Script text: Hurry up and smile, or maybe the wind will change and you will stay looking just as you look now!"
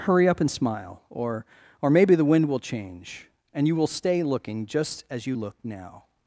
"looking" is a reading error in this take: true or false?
false